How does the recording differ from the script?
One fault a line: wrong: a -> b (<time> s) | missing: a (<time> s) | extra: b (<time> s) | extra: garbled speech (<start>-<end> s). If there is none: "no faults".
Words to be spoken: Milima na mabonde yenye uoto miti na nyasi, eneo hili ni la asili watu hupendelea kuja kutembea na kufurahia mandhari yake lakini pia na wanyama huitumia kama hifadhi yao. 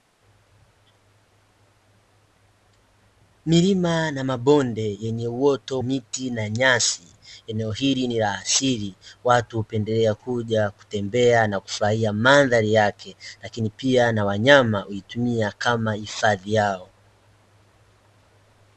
no faults